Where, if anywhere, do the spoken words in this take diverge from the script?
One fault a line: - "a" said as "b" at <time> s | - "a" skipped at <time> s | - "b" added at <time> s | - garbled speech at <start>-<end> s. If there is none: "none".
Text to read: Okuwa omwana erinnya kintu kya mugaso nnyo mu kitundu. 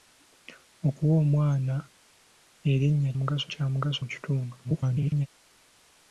- "kintu" said as "mugaso" at 3.2 s
- "nnyo" skipped at 4.0 s
- garbled speech at 4.6-5.3 s